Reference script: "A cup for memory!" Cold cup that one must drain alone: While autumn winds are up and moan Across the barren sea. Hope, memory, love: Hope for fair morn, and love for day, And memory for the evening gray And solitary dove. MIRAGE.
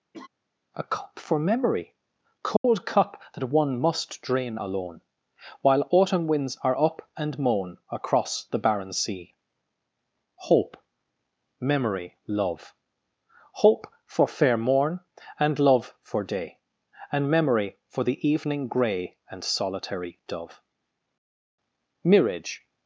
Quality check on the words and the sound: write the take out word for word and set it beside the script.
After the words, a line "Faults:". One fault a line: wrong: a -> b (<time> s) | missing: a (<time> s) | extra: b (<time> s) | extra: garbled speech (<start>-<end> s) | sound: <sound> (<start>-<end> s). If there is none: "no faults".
"A cup for memory!" Cold cup that one must drain alone: While autumn winds are up and moan Across the barren sea. Hope, memory, love: Hope for fair morn, and love for day, And memory for the evening gray And solitary dove. MIRAGE.
Faults:
sound: laugh (0.1-0.3 s)
sound: dropout (2.6-2.6 s)